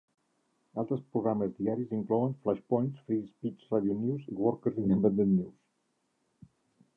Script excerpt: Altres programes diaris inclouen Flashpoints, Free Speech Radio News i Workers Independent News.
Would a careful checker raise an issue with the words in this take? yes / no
no